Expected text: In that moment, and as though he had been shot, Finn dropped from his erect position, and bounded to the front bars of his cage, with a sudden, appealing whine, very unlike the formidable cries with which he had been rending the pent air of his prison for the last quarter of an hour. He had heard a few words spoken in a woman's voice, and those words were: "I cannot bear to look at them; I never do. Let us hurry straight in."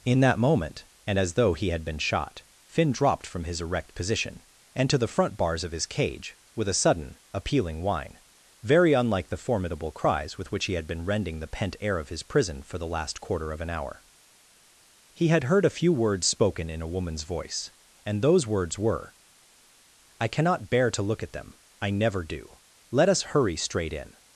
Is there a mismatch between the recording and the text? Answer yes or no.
yes